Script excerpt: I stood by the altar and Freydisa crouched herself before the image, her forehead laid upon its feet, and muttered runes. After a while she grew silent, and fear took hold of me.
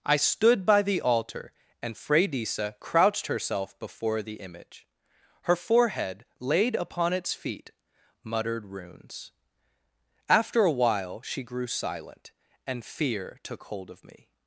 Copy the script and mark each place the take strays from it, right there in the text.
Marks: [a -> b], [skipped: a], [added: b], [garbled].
I stood by the altar and Freydisa crouched herself before the image, her forehead laid upon its feet, [skipped: and] muttered runes. After a while she grew silent, and fear took hold of me.